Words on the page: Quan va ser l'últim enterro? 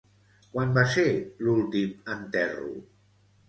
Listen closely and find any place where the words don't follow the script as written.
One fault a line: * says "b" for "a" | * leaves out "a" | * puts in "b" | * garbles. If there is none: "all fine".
all fine